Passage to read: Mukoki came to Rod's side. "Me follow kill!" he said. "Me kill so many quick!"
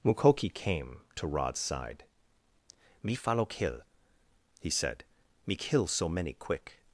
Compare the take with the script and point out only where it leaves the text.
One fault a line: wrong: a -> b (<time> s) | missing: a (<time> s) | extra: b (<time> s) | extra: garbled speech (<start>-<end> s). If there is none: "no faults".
no faults